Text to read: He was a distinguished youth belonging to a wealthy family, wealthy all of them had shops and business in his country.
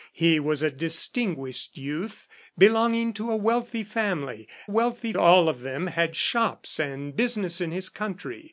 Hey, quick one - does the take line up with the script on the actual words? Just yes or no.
yes